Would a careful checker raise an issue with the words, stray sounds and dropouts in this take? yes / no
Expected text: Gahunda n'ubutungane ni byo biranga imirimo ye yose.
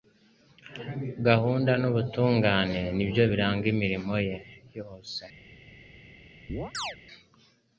yes